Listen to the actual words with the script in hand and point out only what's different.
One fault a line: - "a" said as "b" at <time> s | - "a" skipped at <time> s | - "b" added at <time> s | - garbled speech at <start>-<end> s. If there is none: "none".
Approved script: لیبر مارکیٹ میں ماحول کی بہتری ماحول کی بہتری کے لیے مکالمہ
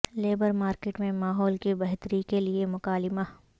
- "ماحول کی بہتری" skipped at 2.2 s